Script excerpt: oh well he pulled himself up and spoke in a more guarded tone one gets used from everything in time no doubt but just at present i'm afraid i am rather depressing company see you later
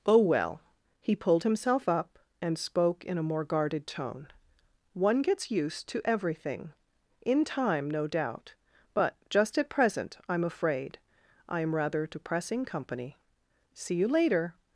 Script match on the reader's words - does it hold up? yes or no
no